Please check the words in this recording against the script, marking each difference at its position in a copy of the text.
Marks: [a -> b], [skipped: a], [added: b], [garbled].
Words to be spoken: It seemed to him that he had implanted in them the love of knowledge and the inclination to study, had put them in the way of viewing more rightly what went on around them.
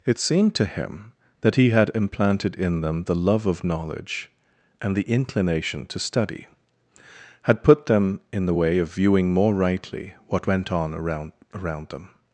It seemed to him that he had implanted in them the love of knowledge and the inclination to study, had put them in the way of viewing more rightly what went on around [added: around] them.